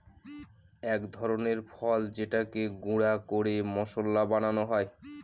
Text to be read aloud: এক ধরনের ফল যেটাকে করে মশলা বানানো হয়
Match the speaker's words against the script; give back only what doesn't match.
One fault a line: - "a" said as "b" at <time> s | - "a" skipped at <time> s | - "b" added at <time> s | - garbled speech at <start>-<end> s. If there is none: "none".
- "গুঁড়া" added at 2.8 s